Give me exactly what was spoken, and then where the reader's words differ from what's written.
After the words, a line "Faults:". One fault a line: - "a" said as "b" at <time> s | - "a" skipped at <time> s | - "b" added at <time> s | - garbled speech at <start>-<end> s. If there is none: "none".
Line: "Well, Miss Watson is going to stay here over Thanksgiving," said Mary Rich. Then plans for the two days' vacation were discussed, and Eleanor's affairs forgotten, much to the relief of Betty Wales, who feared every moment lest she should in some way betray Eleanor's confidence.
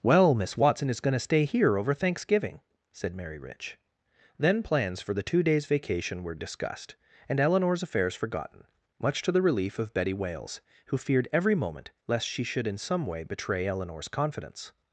"Well, Miss Watson is going to stay here over Thanksgiving," said Mary Rich. Then plans for the two days' vacation were discussed, and Eleanor's affairs forgotten, much to the relief of Betty Wales, who feared every moment lest she should in some way betray Eleanor's confidence.
Faults:
none